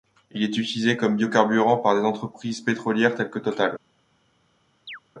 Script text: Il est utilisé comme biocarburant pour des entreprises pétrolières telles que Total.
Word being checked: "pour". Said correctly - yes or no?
no